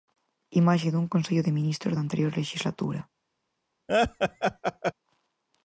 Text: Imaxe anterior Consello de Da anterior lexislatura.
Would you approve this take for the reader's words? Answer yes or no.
no